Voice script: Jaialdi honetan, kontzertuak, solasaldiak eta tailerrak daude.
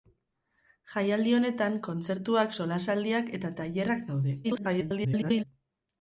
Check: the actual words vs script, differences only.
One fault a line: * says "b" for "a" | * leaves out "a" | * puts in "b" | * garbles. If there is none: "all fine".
* garbles